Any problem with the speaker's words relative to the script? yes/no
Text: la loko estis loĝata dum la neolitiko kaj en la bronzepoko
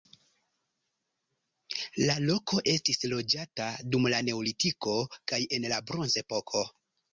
no